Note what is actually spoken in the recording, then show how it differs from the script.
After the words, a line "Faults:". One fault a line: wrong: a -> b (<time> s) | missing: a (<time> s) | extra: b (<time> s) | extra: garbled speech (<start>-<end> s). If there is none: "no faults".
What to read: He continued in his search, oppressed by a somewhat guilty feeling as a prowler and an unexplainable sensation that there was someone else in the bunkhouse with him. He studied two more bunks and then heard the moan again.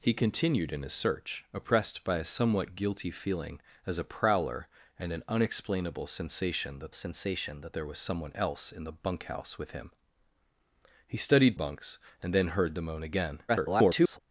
He continued in his search, oppressed by a somewhat guilty feeling as a prowler and an unexplainable sensation that sensation that there was someone else in the bunkhouse with him. He studied bunks and then heard the moan again. [garbled]
Faults:
extra: sensation that (6.9 s)
missing: two more (11.6 s)
extra: garbled speech (13.5-14.2 s)